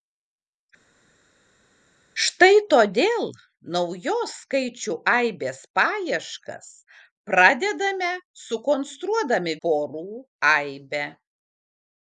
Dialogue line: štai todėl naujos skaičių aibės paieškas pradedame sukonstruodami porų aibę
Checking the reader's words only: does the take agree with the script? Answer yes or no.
yes